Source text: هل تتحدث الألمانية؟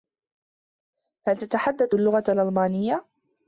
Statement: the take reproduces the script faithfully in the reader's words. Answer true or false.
false